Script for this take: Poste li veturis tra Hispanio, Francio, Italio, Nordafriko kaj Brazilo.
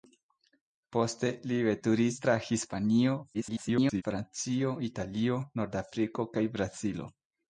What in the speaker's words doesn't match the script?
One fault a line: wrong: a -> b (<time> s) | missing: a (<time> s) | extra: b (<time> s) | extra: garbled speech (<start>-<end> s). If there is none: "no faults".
extra: garbled speech (3.3-4.0 s)